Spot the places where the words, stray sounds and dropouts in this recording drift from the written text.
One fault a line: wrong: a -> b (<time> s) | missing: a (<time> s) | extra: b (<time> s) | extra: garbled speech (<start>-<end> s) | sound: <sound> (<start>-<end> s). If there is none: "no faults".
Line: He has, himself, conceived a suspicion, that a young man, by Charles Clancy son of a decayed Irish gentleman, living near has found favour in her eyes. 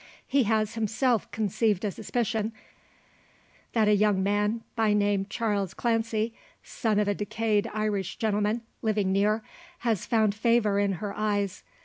extra: name (4.9 s)